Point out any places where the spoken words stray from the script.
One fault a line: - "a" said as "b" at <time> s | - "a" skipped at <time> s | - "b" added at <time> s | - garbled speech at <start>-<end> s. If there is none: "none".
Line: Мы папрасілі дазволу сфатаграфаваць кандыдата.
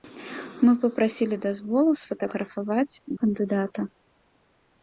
none